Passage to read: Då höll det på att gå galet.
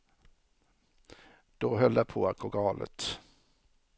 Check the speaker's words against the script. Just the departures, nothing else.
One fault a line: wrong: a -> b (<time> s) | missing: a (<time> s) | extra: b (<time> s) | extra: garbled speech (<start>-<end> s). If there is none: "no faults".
no faults